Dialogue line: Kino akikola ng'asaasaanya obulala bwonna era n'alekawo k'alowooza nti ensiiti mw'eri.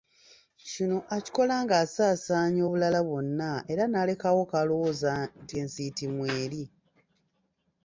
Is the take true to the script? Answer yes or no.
yes